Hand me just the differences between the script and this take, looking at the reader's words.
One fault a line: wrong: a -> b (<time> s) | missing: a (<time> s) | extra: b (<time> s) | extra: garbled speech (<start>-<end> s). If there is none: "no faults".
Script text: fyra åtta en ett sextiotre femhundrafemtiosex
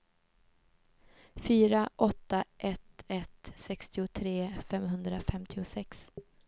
wrong: en -> ett (2.6 s)